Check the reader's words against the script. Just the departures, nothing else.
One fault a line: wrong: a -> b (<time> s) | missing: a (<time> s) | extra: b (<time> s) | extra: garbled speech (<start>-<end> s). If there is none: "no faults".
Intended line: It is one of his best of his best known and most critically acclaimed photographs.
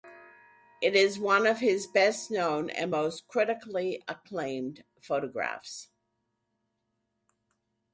missing: of his best (2.3 s)